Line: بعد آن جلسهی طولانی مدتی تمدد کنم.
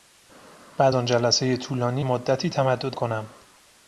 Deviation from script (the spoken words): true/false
false